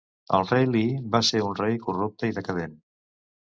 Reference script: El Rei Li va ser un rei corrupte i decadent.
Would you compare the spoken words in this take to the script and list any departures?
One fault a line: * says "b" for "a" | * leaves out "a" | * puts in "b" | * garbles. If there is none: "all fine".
all fine